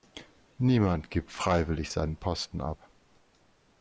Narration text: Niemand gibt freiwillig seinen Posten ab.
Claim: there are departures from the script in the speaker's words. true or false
false